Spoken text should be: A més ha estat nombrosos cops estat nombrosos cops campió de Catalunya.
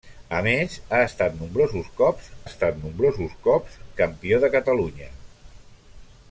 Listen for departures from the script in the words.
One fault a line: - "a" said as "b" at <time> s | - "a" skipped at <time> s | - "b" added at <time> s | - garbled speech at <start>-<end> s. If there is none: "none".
none